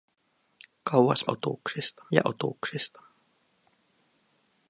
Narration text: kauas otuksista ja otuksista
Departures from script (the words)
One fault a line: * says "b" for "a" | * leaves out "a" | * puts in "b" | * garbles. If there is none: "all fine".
all fine